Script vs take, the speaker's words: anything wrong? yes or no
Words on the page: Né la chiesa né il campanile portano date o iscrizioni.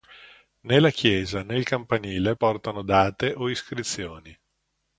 no